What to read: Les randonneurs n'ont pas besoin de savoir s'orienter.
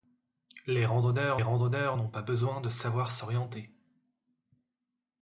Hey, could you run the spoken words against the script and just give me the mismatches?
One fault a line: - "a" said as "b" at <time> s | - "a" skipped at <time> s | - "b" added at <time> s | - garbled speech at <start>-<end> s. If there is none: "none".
- "randonneurs" added at 1.4 s